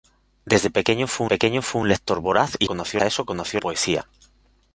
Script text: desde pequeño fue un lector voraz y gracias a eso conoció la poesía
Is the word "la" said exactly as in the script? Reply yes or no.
no